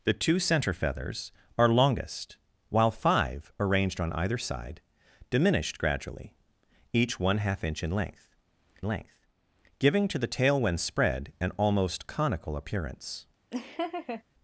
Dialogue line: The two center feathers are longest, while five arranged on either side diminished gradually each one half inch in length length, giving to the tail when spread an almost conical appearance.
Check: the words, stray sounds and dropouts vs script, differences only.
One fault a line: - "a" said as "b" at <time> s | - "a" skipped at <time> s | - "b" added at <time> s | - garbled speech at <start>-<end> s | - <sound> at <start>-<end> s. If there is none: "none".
- laugh at 13.5-14.2 s